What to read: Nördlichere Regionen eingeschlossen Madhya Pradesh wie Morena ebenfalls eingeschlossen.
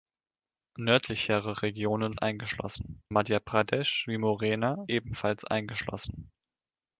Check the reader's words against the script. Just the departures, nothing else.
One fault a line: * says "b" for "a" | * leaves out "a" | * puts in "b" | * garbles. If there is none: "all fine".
all fine